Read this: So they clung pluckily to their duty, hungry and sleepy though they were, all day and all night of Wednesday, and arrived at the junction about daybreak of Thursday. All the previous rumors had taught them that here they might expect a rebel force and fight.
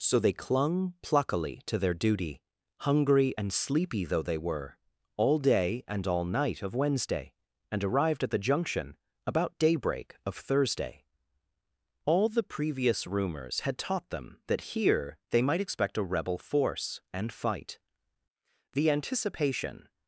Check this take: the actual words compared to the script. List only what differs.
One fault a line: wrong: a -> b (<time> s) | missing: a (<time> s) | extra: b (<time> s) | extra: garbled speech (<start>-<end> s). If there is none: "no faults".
extra: The anticipation (18.7 s)